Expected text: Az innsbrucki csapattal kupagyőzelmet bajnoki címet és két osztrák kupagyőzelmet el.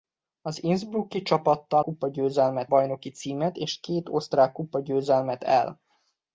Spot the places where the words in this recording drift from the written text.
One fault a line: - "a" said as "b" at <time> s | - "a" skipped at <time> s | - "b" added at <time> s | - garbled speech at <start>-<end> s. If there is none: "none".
none